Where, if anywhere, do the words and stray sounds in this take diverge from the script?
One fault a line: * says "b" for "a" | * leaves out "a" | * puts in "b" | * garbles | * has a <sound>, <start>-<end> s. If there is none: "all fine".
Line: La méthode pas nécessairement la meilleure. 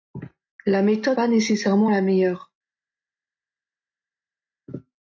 all fine